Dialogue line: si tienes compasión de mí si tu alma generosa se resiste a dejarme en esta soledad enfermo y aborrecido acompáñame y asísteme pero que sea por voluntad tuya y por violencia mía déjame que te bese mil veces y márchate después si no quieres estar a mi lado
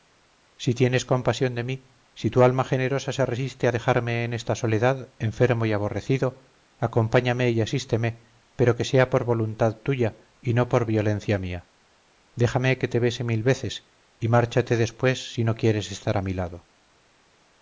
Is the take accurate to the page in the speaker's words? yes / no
no